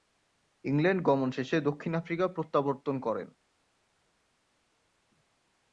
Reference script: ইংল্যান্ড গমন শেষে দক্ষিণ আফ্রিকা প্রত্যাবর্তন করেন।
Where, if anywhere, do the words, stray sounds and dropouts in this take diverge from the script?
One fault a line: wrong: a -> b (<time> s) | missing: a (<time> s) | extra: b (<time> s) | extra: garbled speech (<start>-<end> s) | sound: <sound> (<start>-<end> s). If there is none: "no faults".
no faults